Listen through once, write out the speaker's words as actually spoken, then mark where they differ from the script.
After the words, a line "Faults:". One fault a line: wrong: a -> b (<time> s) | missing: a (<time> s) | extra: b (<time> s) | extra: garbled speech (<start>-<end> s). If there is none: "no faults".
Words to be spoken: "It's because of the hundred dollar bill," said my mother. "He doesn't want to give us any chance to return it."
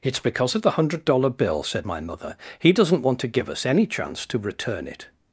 "It's because of the hundred dollar bill," said my mother. "He doesn't want to give us any chance to return it."
Faults:
no faults